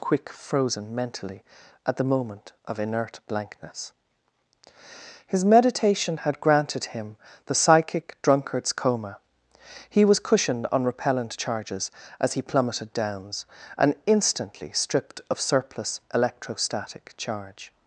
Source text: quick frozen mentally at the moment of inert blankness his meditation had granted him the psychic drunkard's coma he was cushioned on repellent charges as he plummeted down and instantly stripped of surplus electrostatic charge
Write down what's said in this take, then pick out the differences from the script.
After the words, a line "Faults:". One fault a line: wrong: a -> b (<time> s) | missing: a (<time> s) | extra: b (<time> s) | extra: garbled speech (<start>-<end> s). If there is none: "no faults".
quick frozen mentally at the moment of inert blankness his meditation had granted him the psychic drunkard's coma he was cushioned on repellent charges as he plummeted downs and instantly stripped of surplus electrostatic charge
Faults:
wrong: down -> downs (12.9 s)